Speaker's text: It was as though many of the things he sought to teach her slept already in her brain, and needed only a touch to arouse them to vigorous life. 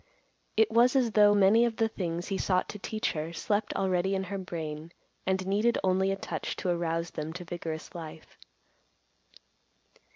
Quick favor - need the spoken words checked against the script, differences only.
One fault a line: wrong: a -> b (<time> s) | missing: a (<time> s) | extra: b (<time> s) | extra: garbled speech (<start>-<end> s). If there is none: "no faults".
no faults